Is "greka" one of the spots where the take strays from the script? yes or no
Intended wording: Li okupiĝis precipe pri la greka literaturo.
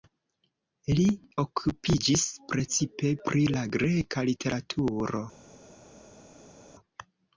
no